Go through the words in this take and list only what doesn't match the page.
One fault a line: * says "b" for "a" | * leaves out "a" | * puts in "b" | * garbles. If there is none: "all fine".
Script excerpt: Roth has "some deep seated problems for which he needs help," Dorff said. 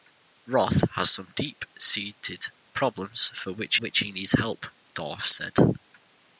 * puts in "which"